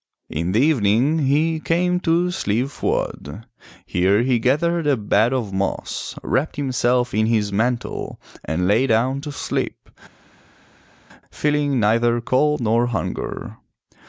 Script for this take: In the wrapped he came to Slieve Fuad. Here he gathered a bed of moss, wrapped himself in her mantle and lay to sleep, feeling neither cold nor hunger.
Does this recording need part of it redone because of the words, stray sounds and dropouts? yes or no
yes